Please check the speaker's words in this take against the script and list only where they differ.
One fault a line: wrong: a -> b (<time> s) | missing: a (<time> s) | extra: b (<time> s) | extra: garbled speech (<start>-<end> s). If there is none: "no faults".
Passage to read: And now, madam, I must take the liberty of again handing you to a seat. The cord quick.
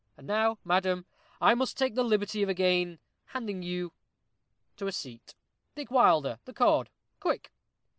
extra: Dick Wilder (5.7 s)